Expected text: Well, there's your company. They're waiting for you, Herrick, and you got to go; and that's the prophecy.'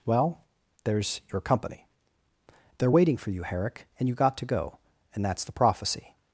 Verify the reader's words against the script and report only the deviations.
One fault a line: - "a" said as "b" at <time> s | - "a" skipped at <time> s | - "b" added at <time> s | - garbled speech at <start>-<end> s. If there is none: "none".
none